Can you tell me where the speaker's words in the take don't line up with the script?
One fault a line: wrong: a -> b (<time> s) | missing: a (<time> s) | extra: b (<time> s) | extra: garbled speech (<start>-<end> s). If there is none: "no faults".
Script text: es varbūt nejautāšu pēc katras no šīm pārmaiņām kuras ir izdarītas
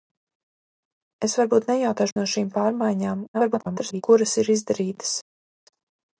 missing: pēc katras (2.2 s)
extra: garbled speech (3.3-4.0 s)